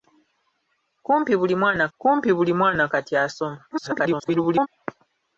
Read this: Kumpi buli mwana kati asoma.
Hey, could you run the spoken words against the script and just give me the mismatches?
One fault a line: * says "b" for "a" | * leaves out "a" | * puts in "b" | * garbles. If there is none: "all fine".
* puts in "kumpi buli mwana"
* garbles